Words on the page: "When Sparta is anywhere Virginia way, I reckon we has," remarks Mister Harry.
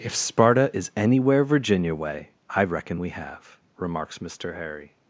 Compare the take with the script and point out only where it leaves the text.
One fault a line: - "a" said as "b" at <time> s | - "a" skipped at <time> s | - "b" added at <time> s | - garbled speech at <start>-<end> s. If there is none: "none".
- "When" said as "If" at 0.0 s
- "has" said as "have" at 3.1 s